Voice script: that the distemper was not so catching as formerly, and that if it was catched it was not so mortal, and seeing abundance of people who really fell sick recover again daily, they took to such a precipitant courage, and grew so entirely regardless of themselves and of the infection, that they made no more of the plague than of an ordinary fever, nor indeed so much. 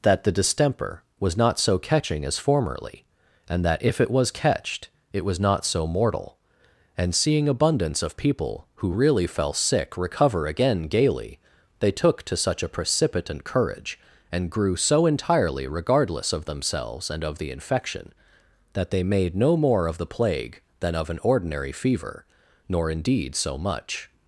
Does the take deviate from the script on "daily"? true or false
true